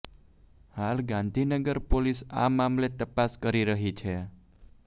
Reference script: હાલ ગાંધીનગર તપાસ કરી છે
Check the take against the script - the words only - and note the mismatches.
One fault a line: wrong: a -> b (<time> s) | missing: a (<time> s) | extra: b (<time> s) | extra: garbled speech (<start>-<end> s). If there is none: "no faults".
extra: પોલીસ આ મામલે (1.9 s)
extra: રહી (3.7 s)